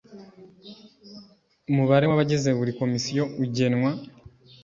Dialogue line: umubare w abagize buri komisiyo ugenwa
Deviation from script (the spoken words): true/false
false